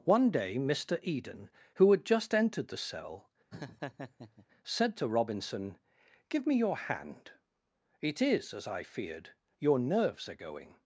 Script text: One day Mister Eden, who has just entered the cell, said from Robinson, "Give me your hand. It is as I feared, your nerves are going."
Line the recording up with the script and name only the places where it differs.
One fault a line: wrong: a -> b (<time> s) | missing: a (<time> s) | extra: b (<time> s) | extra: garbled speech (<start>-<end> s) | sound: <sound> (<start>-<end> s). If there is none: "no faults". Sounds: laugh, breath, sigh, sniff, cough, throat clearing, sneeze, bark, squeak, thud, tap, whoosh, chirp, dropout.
wrong: has -> had (1.9 s)
sound: laugh (3.5-4.5 s)
wrong: from -> to (5.0 s)